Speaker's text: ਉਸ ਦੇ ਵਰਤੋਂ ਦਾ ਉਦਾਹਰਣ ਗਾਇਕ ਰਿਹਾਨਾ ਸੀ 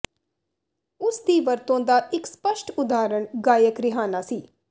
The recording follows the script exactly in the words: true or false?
false